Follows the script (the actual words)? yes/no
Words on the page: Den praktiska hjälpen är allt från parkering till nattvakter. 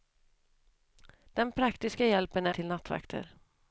no